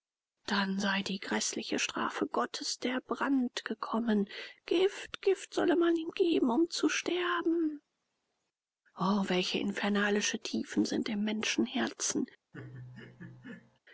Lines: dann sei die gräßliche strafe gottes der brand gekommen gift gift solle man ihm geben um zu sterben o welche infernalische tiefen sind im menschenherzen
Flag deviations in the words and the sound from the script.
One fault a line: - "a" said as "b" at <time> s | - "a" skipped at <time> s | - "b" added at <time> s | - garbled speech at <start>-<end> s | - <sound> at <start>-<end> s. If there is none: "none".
- laugh at 12.5-13.8 s